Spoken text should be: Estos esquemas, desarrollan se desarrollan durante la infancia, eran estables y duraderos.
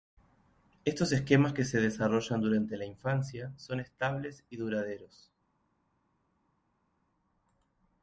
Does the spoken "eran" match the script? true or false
false